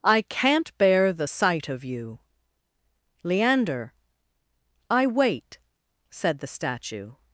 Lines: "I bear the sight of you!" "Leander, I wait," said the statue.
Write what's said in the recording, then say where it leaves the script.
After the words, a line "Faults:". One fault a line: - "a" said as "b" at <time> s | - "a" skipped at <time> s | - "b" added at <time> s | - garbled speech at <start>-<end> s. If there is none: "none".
"I can't bear the sight of you!" "Leander, I wait," said the statue.
Faults:
- "can't" added at 0.2 s